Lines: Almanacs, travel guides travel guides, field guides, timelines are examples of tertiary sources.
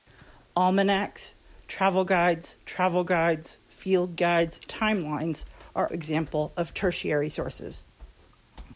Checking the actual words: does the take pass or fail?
pass